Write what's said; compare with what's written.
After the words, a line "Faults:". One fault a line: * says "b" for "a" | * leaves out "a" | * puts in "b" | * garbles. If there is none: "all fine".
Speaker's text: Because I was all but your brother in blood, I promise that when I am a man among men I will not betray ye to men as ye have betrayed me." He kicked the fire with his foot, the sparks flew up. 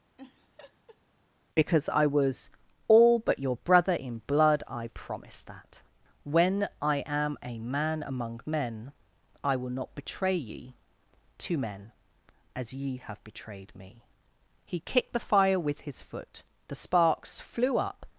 Because I was all but your brother in blood, I promise that when I am a man among men I will not betray ye to men as ye have betrayed me." He kicked the fire with his foot, the sparks flew up.
Faults:
all fine